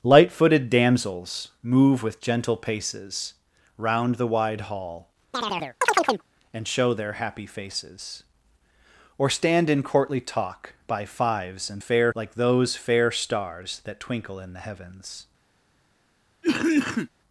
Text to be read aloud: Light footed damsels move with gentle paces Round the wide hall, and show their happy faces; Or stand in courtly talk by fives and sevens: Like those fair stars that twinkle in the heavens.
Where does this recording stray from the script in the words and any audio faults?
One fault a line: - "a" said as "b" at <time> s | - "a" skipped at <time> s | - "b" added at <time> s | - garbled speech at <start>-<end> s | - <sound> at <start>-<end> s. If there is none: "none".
- chirp at 5.3-6.2 s
- "sevens" said as "fair" at 11.8 s
- cough at 16.4-17.1 s